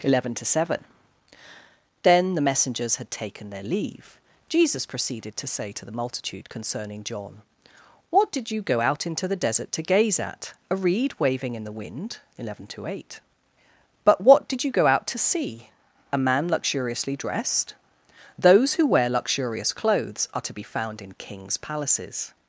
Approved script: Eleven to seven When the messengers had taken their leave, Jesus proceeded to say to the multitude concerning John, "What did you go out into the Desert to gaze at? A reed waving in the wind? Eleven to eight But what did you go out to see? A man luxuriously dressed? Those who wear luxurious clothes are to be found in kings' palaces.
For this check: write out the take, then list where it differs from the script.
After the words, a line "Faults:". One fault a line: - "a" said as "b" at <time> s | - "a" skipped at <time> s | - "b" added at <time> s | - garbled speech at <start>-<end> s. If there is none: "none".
Eleven to seven Then the messengers had taken their leave, Jesus proceeded to say to the multitude concerning John, "What did you go out into the Desert to gaze at? A reed waving in the wind? Eleven to eight But what did you go out to see? A man luxuriously dressed? Those who wear luxurious clothes are to be found in kings' palaces.
Faults:
- "When" said as "Then" at 2.0 s